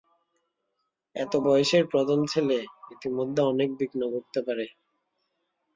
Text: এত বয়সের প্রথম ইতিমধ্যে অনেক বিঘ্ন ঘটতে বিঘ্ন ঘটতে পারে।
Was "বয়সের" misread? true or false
false